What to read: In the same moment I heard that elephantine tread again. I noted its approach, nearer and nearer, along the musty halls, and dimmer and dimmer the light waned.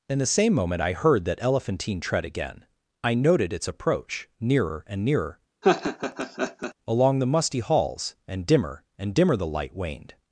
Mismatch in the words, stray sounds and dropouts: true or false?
true